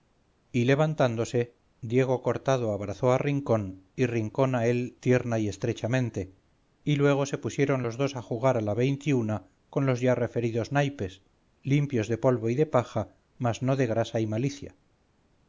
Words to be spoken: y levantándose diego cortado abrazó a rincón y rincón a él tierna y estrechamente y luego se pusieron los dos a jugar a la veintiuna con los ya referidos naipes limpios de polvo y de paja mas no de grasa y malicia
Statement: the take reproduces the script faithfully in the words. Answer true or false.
true